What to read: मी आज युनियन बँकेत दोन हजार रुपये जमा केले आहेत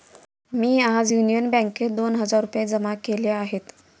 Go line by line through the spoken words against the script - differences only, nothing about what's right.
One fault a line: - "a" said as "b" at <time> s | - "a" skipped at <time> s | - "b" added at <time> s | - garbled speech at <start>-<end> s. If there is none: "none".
none